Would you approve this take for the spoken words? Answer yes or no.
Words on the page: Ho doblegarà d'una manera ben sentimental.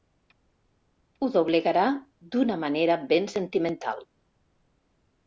yes